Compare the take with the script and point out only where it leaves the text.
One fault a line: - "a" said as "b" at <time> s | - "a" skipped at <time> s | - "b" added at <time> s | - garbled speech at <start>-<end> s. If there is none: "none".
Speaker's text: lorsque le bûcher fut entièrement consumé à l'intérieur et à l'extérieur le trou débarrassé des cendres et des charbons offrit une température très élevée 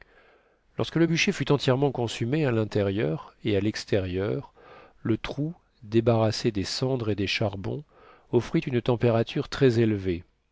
none